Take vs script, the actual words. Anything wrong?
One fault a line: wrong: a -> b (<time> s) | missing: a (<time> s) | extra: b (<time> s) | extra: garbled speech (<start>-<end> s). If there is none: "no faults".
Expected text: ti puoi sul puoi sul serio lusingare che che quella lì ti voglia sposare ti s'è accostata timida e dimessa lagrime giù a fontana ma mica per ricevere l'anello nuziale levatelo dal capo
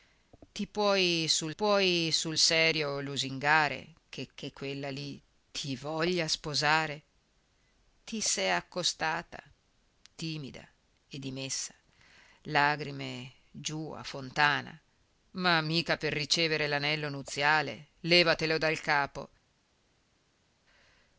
no faults